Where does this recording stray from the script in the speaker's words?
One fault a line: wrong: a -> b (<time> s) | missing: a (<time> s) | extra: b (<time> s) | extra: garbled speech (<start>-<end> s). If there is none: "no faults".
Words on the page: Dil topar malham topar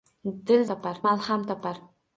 no faults